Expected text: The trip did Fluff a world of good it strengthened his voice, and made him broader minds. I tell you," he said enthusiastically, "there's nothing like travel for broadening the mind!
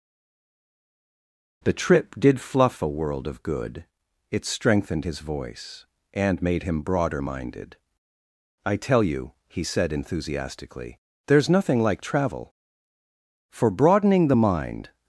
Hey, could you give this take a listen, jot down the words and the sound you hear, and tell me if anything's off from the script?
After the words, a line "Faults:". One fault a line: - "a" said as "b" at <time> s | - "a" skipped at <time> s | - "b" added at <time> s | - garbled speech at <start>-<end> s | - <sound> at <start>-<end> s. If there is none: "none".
The trip did Fluff a world of good it strengthened his voice, and made him broader minded. I tell you," he said enthusiastically, "there's nothing like travel for broadening the mind!
Faults:
- "minds" said as "minded" at 7.2 s